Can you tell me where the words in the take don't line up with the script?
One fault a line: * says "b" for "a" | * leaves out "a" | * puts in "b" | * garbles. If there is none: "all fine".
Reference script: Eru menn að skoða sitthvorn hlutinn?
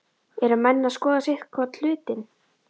all fine